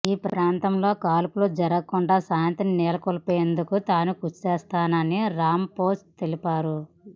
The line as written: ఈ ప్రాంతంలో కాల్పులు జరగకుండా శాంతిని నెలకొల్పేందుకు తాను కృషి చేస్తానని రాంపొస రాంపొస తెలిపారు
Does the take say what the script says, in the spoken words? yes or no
no